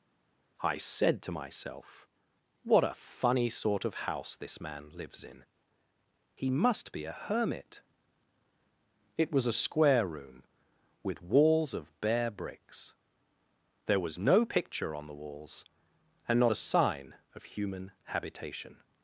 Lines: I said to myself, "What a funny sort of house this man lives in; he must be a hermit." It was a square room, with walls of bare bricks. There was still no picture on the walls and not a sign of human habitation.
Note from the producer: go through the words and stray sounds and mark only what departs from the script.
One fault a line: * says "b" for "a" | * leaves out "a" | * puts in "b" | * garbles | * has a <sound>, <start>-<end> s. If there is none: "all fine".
* leaves out "still"